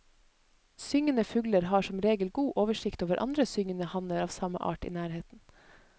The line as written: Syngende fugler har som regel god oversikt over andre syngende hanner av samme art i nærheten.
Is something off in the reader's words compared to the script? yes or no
no